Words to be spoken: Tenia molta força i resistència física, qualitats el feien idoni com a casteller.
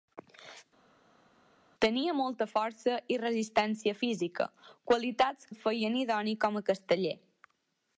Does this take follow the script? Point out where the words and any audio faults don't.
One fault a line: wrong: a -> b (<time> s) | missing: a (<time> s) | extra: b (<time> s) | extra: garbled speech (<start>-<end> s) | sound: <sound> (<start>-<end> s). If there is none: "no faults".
no faults